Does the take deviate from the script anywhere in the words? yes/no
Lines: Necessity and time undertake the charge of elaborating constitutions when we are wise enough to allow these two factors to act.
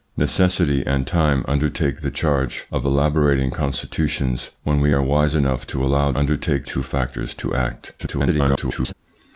yes